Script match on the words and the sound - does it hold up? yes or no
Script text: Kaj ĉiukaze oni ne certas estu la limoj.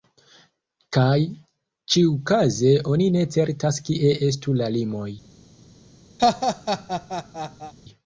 no